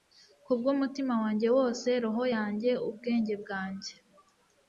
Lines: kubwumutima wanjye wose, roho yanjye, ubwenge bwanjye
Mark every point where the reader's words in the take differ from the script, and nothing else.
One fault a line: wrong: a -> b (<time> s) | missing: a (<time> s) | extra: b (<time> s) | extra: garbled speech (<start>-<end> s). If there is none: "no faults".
no faults